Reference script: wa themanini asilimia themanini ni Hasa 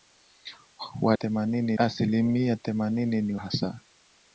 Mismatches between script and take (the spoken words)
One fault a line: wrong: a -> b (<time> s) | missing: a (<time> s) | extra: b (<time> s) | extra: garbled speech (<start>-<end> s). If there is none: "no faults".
no faults